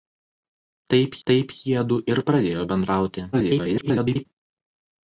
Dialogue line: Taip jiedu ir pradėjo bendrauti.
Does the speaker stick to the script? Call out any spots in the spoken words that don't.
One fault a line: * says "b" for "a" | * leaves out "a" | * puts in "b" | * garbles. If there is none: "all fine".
* puts in "taip"
* garbles